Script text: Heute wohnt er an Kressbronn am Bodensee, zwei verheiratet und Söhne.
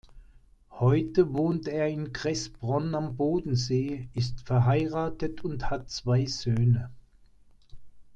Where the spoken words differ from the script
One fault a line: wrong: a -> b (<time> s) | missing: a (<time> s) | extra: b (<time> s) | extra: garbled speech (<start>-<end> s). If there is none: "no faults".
wrong: an -> in (1.9 s)
wrong: zwei -> ist (4.1 s)
extra: hat zwei (5.7 s)